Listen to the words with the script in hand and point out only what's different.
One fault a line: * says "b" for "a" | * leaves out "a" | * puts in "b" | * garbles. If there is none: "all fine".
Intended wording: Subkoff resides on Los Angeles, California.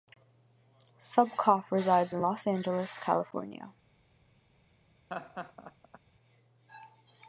* says "in" for "on"